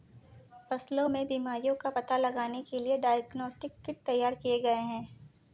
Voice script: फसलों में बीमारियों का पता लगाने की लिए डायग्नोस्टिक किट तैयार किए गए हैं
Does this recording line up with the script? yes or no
no